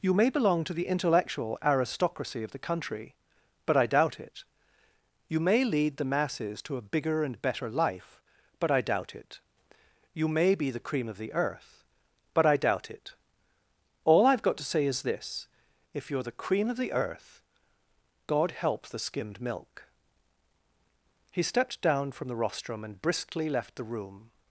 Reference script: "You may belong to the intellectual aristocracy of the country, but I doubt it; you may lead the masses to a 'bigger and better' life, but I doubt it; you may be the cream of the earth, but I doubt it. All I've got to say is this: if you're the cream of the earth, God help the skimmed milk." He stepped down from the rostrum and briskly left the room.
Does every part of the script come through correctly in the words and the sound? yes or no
yes